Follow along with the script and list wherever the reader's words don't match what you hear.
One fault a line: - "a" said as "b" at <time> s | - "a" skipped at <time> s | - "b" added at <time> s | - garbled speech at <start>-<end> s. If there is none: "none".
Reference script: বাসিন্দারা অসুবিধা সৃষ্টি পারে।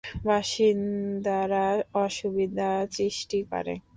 none